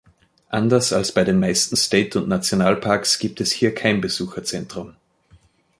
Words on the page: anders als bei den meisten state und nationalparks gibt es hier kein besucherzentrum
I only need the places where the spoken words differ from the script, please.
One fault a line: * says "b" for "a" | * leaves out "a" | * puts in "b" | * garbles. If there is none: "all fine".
all fine